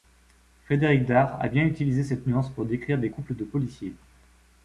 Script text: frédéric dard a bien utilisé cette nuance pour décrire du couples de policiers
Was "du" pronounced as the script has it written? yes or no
no